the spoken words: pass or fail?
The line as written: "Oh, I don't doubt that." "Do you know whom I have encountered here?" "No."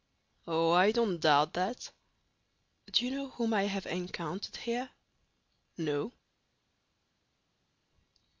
pass